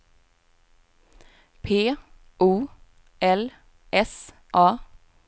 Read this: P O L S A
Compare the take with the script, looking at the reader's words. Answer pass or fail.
pass